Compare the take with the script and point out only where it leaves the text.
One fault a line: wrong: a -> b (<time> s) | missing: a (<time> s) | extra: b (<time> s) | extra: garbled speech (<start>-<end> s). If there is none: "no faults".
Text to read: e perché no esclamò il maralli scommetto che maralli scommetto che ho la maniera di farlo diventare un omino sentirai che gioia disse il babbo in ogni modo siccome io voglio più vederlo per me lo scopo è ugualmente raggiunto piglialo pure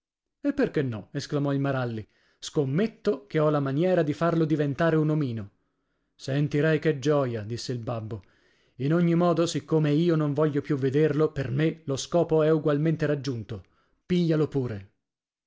missing: maralli scommetto che (3.4 s)
extra: non (10.2 s)